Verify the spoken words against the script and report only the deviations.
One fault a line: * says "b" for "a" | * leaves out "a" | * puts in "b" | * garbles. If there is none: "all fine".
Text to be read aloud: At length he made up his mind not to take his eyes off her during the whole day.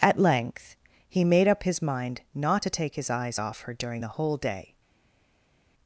all fine